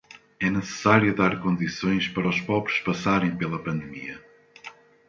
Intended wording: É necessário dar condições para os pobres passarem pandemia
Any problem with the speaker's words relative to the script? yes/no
yes